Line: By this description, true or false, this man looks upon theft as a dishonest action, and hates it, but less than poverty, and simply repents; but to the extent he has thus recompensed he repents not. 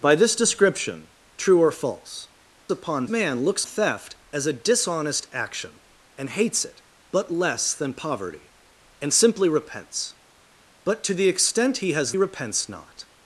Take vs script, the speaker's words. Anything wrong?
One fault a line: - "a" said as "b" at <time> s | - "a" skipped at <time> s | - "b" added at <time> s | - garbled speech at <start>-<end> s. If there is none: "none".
- "this" said as "upon" at 2.7 s
- "upon" skipped at 3.6 s
- "thus recompensed he" skipped at 12.1 s